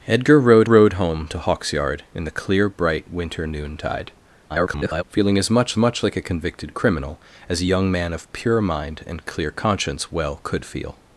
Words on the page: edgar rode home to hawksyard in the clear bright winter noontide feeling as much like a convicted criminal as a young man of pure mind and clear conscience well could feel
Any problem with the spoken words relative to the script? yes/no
yes